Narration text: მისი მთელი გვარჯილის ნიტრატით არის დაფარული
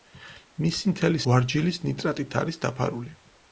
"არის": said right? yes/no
yes